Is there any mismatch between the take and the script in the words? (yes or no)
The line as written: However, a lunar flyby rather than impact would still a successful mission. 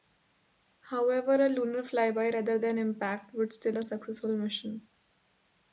no